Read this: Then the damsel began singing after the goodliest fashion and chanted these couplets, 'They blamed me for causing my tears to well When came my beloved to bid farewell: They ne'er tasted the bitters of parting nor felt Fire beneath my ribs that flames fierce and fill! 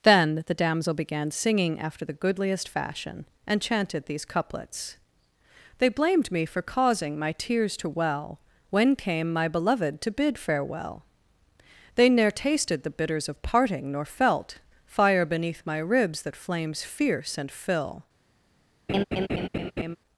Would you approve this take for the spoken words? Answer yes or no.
yes